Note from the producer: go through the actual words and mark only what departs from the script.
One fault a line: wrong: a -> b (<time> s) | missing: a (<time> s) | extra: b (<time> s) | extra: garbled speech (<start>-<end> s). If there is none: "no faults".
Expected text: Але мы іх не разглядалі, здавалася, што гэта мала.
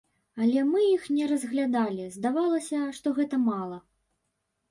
no faults